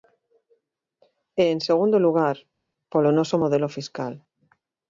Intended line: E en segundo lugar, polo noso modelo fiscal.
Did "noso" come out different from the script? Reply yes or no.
no